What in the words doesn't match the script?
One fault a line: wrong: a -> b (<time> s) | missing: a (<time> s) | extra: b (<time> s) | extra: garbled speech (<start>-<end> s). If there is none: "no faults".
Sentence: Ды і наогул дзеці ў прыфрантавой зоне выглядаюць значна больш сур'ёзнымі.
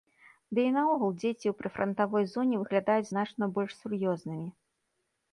no faults